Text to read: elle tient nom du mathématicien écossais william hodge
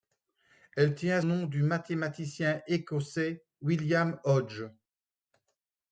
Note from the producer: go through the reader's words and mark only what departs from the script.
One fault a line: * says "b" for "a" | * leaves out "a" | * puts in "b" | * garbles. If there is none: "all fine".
all fine